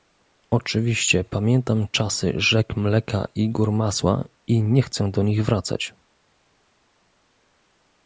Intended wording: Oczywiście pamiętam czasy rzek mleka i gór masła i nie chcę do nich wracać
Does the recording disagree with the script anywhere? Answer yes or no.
no